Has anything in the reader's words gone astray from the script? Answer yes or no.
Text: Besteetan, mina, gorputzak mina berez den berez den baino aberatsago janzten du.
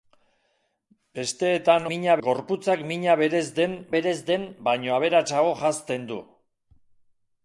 no